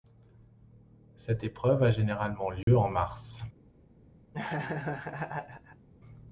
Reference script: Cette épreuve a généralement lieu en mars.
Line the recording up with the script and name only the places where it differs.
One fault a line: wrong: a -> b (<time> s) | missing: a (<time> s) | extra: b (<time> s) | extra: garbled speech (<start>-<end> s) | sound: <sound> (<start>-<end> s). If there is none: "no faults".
sound: dropout (2.6-2.7 s)
sound: laugh (4.3-5.9 s)